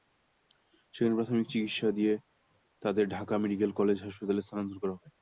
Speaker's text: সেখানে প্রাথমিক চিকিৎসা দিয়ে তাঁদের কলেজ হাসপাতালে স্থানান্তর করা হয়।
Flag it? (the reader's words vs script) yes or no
yes